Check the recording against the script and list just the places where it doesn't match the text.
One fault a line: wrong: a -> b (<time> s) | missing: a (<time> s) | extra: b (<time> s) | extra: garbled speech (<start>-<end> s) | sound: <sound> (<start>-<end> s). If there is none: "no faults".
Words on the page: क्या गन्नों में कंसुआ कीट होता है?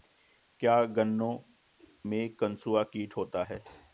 no faults